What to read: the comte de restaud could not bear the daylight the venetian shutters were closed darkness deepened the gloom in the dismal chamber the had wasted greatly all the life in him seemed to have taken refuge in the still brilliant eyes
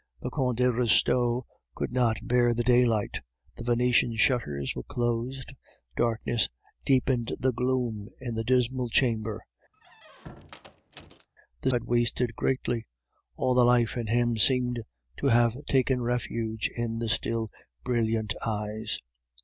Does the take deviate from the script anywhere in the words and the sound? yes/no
yes